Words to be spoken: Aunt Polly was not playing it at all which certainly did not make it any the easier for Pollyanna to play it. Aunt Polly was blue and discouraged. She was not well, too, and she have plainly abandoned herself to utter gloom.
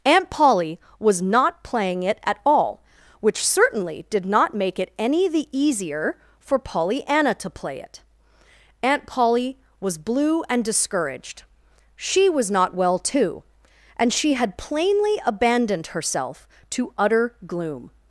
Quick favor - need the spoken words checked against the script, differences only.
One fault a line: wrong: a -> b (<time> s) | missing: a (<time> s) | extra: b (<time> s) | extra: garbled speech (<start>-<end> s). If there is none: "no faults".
wrong: have -> had (14.3 s)